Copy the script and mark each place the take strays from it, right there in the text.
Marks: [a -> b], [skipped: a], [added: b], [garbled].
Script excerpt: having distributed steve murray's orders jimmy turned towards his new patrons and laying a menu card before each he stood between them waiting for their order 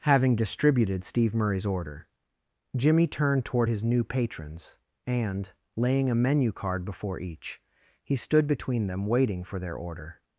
having distributed steve murray's [orders -> order] jimmy turned [towards -> toward] his new patrons and laying a menu card before each he stood between them waiting for their order